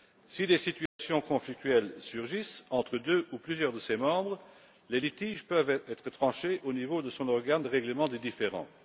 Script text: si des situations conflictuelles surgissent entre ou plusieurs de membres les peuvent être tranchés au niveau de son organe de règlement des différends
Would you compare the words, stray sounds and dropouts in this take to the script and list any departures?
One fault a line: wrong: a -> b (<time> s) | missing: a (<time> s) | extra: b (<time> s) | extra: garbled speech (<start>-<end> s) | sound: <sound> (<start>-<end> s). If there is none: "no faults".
sound: dropout (0.9-1.0 s)
extra: deux (3.0 s)
extra: ses (3.8 s)
extra: litiges (5.0 s)